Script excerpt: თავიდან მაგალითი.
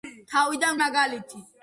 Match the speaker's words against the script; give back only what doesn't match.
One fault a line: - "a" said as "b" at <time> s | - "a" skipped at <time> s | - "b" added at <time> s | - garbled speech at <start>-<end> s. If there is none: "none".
none